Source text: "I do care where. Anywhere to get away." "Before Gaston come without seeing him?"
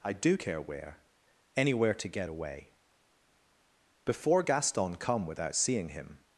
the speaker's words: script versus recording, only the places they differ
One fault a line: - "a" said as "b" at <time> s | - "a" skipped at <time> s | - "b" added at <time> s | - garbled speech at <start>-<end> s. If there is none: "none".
none